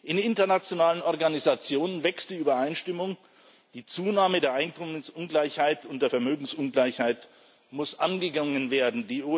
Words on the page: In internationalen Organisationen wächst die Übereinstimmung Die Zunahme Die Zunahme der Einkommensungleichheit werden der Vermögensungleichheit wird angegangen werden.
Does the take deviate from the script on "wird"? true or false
true